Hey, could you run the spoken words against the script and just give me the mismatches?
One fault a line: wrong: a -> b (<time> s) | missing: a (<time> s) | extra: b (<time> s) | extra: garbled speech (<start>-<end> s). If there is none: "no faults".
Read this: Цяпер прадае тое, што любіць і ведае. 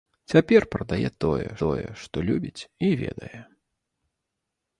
extra: тое (1.6 s)